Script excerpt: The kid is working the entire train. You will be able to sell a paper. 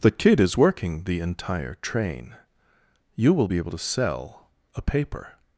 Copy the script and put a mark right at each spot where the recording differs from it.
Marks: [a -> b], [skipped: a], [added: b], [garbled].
The kid is working the entire train. You will be able to sell a paper.